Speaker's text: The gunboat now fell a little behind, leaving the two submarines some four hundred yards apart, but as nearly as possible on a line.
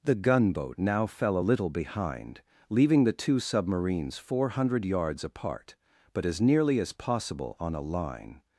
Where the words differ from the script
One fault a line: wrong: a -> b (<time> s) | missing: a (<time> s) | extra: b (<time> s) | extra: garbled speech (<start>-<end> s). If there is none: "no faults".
missing: some (4.2 s)